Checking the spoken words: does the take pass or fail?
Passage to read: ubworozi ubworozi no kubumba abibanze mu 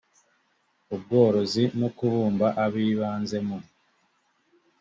fail